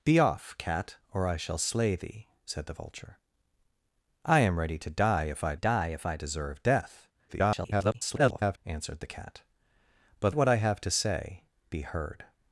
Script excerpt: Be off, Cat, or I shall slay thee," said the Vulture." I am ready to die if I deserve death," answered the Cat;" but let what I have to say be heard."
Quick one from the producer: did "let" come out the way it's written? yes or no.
no